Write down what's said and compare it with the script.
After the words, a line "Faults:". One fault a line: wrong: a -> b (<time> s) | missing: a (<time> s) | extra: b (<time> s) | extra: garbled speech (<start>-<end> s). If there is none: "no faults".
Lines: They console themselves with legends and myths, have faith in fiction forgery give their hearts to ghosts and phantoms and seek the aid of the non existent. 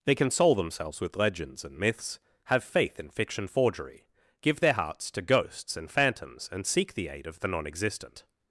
They console themselves with legends and myths, have faith in fiction forgery give their hearts to ghosts and phantoms and seek the aid of the non existent.
Faults:
no faults